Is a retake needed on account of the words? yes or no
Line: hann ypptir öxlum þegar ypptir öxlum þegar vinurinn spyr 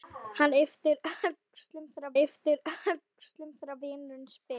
no